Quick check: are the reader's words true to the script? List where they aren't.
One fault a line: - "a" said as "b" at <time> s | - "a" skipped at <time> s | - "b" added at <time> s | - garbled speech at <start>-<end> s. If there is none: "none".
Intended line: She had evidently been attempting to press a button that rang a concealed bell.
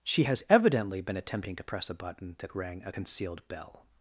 - "had" said as "has" at 0.2 s